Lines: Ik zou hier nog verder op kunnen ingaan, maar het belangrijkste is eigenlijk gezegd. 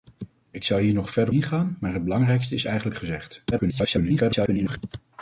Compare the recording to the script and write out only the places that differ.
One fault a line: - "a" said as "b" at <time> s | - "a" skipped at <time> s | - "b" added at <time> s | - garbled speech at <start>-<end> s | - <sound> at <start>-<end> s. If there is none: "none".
- "op kunnen" skipped at 1.3 s
- garbled speech at 3.5-4.8 s